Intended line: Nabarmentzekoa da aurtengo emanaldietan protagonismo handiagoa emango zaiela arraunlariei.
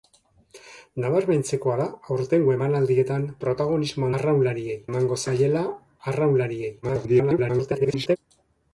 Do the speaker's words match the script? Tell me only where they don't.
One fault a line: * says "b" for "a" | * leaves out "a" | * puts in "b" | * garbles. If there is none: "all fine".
* says "arraunlariei" for "handiagoa"
* garbles